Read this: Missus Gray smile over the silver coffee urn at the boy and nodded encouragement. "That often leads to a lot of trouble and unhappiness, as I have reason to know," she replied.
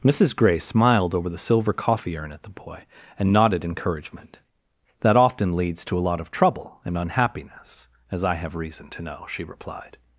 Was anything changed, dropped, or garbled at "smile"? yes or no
yes